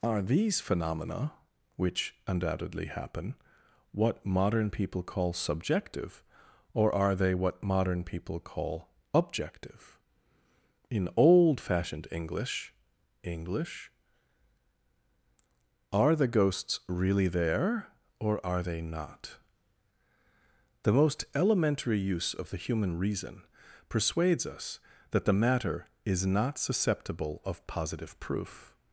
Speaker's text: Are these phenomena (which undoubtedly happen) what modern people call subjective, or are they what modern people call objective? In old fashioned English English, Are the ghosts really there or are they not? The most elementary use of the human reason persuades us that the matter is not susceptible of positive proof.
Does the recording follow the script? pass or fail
pass